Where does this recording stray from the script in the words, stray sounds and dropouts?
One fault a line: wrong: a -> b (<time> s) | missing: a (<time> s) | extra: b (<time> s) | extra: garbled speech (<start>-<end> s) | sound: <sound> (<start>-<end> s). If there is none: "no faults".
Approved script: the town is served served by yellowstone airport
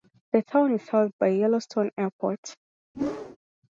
missing: served (1.1 s)
sound: whoosh (2.9-3.4 s)